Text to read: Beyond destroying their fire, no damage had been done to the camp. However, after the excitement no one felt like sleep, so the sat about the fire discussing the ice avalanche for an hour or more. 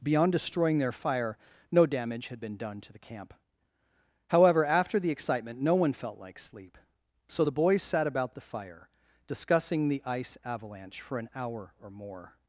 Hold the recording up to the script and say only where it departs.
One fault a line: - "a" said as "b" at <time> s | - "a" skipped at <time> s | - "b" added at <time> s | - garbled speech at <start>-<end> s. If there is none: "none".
- "boys" added at 7.5 s